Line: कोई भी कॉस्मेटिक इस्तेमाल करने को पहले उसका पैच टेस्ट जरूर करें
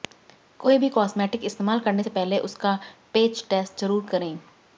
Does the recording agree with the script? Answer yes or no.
no